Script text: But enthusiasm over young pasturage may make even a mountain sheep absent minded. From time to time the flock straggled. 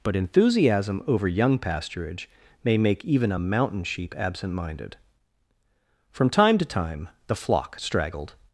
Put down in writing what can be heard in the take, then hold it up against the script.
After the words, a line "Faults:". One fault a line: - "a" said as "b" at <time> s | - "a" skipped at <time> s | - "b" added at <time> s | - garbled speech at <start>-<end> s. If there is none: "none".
But enthusiasm over young pasturage may make even a mountain sheep absent minded. From time to time the flock straggled.
Faults:
none